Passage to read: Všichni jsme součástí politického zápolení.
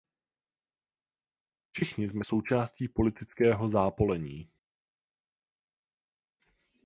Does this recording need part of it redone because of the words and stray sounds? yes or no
no